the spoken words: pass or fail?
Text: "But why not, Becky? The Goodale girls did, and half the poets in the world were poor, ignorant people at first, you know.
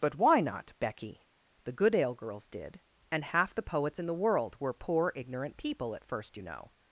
pass